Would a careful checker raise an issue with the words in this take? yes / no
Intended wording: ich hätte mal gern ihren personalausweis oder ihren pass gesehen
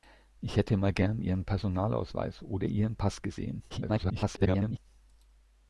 yes